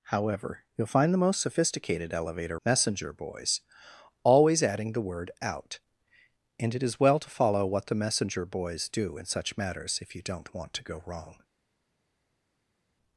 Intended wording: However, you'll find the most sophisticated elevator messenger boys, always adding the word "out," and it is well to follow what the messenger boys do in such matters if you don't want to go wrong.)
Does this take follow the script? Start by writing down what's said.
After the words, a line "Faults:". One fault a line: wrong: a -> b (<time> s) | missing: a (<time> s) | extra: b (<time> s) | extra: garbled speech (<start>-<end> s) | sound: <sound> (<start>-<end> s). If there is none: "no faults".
However, you'll find the most sophisticated elevator messenger boys, always adding the word "out," and it is well to follow what the messenger boys do in such matters if you don't want to go wrong.)
Faults:
no faults